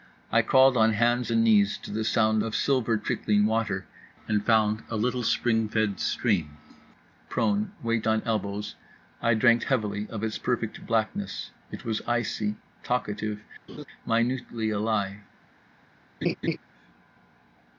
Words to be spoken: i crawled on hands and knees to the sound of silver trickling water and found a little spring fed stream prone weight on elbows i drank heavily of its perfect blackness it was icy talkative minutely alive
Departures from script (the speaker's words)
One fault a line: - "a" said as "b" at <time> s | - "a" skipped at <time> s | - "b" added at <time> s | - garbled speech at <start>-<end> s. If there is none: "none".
none